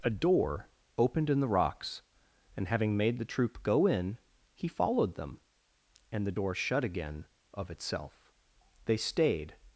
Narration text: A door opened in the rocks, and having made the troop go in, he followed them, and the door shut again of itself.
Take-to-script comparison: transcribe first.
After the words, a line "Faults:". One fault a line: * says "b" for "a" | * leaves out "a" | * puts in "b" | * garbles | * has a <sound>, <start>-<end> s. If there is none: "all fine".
A door opened in the rocks, and having made the troop go in, he followed them, and the door shut again of itself. They stayed
Faults:
* puts in "They stayed"